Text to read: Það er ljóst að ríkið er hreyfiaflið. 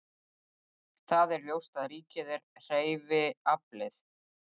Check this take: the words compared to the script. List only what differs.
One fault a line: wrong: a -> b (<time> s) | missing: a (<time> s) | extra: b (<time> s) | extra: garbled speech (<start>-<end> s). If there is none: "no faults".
no faults